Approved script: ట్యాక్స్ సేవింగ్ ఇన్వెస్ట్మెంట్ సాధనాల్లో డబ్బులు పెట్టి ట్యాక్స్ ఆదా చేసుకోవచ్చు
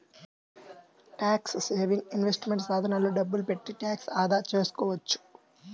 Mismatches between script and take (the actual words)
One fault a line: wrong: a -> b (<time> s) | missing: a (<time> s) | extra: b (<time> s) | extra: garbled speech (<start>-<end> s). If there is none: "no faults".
no faults